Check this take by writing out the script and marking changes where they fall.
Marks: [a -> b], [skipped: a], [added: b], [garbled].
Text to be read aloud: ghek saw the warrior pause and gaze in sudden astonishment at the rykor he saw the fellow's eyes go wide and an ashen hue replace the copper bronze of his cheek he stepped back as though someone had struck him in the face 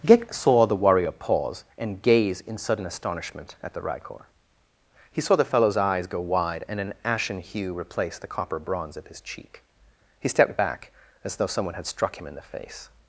ghek saw the warrior pause and gaze in sudden astonishment at the rykor he saw the fellow's eyes go wide and an ashen hue replace the copper bronze of his cheek he stepped back as though someone had struck him in the face